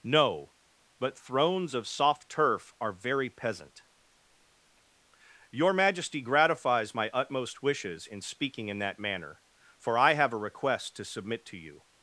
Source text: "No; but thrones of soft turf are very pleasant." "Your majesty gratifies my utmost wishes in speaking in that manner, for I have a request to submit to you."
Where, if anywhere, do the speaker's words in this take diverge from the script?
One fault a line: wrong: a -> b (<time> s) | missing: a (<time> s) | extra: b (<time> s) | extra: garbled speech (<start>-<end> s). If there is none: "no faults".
wrong: pleasant -> peasant (3.3 s)